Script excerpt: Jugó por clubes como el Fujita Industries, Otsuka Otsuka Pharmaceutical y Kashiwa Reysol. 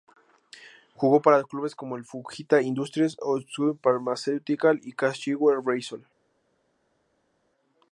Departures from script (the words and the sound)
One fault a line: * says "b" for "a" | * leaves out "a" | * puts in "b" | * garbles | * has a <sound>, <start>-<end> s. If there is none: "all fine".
* says "para" for "por"
* leaves out "Otsuka"